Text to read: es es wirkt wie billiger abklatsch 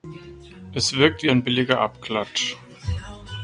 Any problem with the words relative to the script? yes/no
yes